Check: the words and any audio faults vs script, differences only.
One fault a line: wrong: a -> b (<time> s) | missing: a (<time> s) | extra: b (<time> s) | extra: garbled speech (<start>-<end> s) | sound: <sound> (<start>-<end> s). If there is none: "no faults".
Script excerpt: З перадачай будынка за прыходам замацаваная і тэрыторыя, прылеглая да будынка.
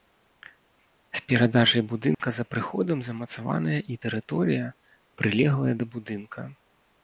sound: dropout (2.1-2.2 s)